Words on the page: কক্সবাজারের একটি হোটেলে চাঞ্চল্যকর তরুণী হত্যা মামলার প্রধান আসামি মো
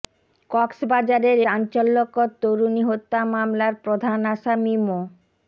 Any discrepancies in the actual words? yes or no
yes